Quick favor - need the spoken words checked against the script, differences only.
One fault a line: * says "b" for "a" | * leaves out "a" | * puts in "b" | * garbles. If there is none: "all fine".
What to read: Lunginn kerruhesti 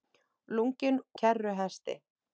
all fine